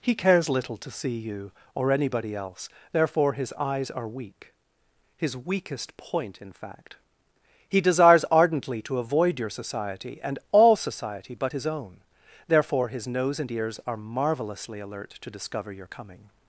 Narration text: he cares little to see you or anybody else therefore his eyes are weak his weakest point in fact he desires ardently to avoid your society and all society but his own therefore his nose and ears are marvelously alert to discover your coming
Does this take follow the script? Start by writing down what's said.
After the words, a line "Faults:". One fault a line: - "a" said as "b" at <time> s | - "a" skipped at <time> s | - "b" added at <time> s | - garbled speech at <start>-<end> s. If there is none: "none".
he cares little to see you or anybody else therefore his eyes are weak his weakest point in fact he desires ardently to avoid your society and all society but his own therefore his nose and ears are marvelously alert to discover your coming
Faults:
none